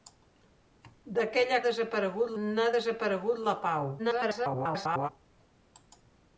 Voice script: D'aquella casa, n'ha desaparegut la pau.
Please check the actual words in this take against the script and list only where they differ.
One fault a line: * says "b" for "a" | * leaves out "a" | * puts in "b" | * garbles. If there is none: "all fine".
* says "desaparegut" for "casa"
* garbles